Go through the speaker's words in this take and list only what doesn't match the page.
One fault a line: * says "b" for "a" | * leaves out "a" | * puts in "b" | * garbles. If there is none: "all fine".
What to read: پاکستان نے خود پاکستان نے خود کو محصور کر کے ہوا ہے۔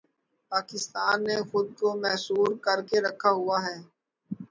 * leaves out "پاکستان نے خود"
* puts in "رکھا"